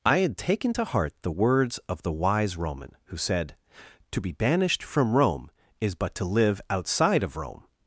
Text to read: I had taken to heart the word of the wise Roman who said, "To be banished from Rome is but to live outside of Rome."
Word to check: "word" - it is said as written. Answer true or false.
false